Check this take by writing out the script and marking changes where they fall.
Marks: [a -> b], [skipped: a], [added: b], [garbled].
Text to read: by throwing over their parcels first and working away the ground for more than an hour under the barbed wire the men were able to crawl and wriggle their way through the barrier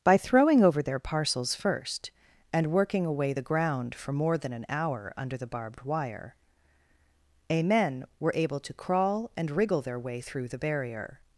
by throwing over their parcels first and working away the ground for more than an hour under the barbed wire [the -> a] men were able to crawl and wriggle their way through the barrier